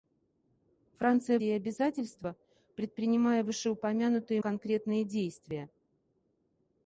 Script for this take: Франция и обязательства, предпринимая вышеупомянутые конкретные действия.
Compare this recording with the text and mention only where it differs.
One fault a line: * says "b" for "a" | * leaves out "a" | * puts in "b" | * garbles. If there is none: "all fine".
all fine